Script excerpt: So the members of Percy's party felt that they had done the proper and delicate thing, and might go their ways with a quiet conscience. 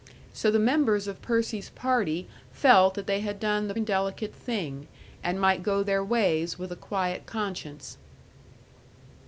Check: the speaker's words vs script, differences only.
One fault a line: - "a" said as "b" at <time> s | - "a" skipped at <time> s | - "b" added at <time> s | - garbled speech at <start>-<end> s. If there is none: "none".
- "proper" skipped at 3.8 s